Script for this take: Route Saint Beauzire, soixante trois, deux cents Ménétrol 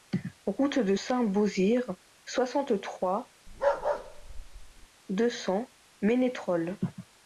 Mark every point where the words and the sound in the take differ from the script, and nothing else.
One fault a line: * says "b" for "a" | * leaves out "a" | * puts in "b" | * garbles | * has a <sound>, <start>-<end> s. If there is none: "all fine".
* puts in "de"
* has a bark, 3.5-4.9 s